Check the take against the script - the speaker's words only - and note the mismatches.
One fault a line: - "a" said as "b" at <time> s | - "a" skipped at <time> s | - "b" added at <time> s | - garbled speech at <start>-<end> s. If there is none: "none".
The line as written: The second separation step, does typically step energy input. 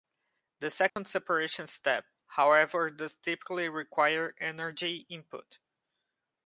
- "however" added at 2.2 s
- "step" said as "require" at 3.7 s